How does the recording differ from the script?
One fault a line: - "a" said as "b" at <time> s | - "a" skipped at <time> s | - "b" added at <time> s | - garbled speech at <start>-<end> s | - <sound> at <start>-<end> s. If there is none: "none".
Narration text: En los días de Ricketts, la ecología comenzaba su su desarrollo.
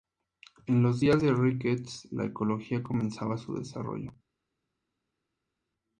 - "su" skipped at 3.5 s